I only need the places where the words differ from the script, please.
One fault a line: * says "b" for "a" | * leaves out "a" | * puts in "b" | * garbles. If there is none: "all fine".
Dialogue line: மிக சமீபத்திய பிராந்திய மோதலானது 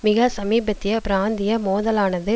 all fine